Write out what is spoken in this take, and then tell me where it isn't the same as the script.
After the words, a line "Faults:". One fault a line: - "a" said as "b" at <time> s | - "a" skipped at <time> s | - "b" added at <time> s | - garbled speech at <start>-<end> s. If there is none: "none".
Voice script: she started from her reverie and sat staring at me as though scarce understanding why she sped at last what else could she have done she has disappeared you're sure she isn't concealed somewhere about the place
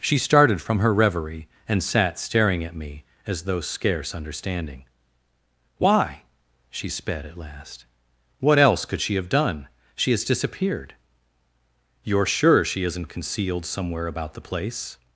she started from her reverie and sat staring at me as though scarce understanding why she sped at last what else could she have done she has disappeared you're sure she isn't concealed somewhere about the place
Faults:
none